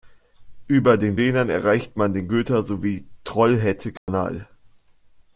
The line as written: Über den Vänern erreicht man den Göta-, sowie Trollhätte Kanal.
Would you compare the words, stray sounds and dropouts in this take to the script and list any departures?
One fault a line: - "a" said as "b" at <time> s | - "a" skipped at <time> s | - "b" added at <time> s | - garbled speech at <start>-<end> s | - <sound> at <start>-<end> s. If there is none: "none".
- dropout at 4.0-4.1 s